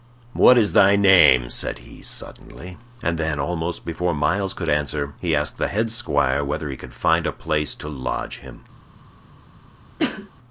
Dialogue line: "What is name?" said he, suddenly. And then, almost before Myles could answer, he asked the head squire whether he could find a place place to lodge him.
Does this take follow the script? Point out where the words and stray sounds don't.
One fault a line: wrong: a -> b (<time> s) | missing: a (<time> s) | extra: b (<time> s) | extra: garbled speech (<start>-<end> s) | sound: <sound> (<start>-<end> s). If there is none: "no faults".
extra: thy (0.7 s)
missing: place (7.8 s)
sound: cough (10.0-10.3 s)